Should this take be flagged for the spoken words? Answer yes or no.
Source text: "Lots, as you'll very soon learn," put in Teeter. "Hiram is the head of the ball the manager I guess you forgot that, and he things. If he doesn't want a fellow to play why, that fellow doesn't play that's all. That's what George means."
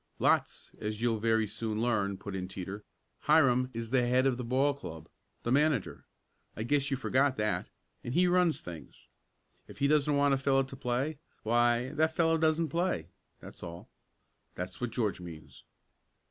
yes